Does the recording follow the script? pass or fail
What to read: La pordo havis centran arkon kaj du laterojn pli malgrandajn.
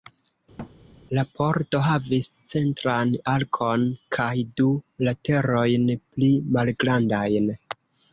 pass